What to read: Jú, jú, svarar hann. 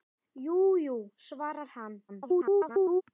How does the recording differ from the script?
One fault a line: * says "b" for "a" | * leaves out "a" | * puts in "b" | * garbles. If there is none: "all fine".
* garbles